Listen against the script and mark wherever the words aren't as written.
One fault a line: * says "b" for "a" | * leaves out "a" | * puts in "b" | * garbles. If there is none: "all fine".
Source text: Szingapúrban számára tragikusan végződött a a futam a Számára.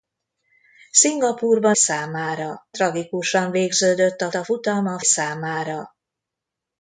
all fine